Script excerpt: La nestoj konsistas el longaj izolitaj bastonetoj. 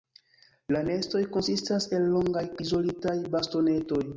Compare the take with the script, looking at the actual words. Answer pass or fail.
pass